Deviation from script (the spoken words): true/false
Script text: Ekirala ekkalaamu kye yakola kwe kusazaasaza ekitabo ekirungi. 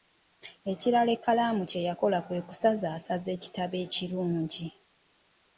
false